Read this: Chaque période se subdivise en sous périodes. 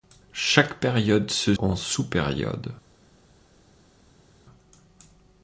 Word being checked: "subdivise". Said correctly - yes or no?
no